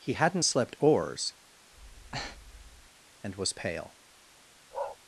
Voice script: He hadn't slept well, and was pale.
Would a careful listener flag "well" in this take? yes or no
yes